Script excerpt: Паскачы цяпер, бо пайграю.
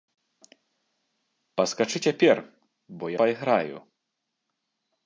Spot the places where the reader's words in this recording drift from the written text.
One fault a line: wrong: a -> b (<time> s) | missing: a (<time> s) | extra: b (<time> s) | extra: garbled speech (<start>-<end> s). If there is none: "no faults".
no faults